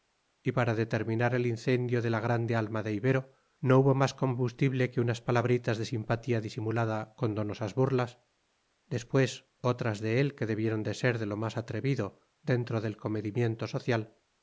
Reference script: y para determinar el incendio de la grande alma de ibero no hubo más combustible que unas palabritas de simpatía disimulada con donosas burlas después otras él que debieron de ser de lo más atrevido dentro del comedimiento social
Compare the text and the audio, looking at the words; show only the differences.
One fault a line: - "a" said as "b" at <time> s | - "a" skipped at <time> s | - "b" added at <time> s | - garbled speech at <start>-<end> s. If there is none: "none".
- "de" added at 10.0 s